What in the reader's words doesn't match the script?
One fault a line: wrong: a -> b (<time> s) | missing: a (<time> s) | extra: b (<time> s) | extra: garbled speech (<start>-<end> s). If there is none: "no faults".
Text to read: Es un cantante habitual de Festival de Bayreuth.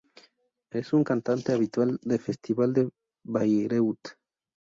no faults